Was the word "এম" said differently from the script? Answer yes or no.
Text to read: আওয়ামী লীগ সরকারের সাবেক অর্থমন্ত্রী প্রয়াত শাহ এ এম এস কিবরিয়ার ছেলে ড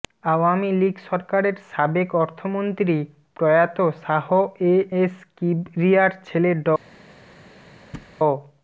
yes